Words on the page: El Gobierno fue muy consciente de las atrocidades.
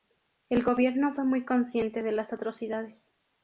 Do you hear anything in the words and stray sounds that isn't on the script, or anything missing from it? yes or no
no